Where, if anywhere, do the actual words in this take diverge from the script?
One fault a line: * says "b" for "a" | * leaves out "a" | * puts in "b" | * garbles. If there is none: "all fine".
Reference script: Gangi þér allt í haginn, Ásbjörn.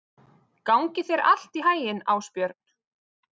all fine